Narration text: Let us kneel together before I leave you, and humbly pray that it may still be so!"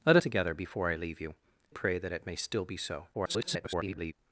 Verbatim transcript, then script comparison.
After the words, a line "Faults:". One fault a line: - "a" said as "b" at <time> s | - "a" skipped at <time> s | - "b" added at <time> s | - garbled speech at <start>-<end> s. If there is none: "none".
Let together before I leave you, pray that it may still be so!" [garbled]
Faults:
- "us kneel" skipped at 0.2 s
- "and humbly" skipped at 1.3 s
- garbled speech at 3.1-4.1 s